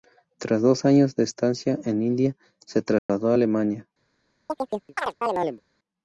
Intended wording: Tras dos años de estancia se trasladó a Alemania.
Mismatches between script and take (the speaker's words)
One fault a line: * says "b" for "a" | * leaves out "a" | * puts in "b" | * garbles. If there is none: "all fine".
* puts in "en India"